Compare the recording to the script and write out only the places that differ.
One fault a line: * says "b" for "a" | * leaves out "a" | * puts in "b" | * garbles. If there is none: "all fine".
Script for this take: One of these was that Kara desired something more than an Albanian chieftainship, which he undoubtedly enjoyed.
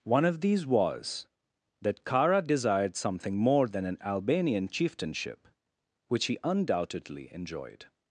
all fine